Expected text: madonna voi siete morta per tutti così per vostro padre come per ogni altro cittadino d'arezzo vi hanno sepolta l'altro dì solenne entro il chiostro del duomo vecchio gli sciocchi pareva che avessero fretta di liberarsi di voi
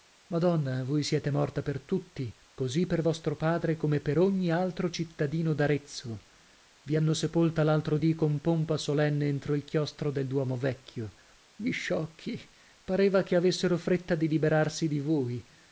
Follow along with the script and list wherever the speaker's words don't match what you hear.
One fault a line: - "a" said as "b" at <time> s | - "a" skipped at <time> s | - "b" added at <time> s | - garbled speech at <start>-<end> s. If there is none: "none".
- "con pompa" added at 8.1 s